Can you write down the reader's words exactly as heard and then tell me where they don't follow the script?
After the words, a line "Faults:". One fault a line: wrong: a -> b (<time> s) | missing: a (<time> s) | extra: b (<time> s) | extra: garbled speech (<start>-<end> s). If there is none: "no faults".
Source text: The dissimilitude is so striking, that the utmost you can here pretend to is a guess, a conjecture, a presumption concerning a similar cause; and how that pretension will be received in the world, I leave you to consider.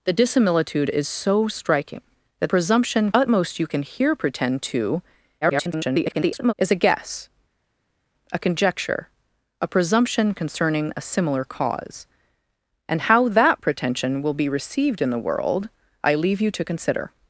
The dissimilitude is so striking, that presumption utmost you can here pretend to [garbled] is a guess, a conjecture, a presumption concerning a similar cause; and how that pretension will be received in the world, I leave you to consider.
Faults:
wrong: the -> presumption (2.5 s)
extra: garbled speech (5.4-6.5 s)